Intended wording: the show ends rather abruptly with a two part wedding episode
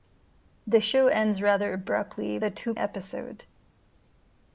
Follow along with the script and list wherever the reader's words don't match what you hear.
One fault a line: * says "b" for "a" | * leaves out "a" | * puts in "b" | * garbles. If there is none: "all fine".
* leaves out "with"
* leaves out "part wedding"